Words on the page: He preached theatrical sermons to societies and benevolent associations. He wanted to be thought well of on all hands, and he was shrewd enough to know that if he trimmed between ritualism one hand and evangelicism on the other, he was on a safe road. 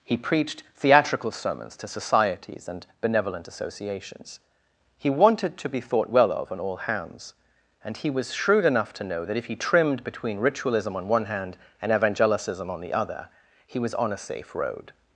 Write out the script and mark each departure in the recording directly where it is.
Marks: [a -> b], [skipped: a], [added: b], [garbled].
He preached theatrical sermons to societies and benevolent associations. He wanted to be thought well of on all hands, and he was shrewd enough to know that if he trimmed between ritualism [added: on] one hand and evangelicism on the other, he was on a safe road.